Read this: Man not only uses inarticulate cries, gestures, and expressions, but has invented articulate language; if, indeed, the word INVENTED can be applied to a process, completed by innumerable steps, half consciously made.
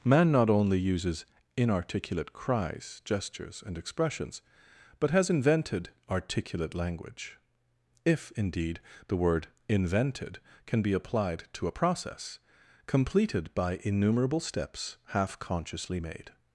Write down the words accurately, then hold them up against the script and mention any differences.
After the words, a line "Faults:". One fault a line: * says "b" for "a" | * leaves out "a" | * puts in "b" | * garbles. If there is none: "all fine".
Man not only uses inarticulate cries, gestures, and expressions, but has invented articulate language; if, indeed, the word INVENTED can be applied to a process, completed by innumerable steps, half consciously made.
Faults:
all fine